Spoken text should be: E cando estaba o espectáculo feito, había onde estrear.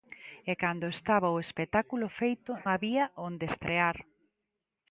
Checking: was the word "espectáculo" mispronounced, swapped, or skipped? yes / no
no